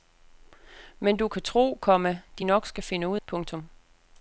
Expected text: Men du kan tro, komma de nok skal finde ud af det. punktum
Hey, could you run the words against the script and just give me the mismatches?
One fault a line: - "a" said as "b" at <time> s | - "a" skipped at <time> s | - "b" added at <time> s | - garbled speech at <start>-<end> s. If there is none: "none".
- "af det" skipped at 3.2 s